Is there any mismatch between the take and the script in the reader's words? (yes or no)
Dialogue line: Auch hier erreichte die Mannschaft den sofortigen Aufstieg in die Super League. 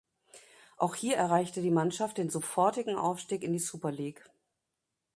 no